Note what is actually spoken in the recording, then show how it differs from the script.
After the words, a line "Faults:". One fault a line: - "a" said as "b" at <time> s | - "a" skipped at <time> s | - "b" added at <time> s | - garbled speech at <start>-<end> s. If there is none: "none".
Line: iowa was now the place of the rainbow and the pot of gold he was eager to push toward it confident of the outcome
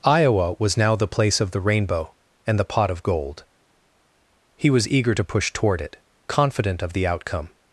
iowa was now the place of the rainbow and the pot of gold he was eager to push toward it confident of the outcome
Faults:
none